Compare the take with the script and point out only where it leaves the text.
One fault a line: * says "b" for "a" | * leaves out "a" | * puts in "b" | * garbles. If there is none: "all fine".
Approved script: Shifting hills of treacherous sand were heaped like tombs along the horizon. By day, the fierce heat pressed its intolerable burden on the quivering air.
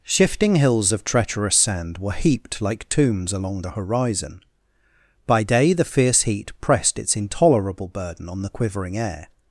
all fine